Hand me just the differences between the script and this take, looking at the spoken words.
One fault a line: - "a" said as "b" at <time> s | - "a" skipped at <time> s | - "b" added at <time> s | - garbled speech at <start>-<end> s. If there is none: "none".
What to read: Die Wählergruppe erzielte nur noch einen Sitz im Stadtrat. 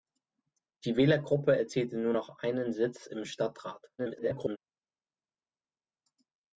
- garbled speech at 4.0-4.6 s